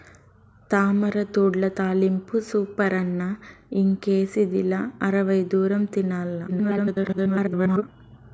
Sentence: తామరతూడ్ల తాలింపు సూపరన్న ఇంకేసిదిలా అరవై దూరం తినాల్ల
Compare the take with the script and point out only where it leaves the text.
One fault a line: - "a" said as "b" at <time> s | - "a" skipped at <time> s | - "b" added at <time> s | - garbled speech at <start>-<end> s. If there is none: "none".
- garbled speech at 6.5-7.8 s